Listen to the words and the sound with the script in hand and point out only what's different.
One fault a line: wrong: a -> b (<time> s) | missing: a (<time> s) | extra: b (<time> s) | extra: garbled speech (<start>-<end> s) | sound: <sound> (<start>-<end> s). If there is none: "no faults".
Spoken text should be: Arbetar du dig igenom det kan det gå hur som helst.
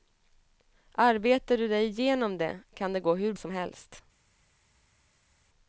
no faults